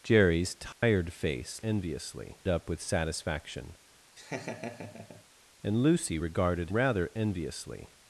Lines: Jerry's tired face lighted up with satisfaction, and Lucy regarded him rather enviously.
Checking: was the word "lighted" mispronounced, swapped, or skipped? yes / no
yes